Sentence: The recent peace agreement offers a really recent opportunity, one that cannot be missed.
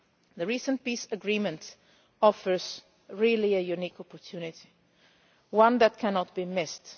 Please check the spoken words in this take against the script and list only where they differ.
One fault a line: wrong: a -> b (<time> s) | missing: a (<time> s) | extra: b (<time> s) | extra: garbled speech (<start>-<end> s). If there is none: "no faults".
wrong: recent -> unique (3.6 s)